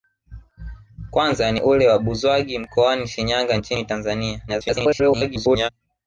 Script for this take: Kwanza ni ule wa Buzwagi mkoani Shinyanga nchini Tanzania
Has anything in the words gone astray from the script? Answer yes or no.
yes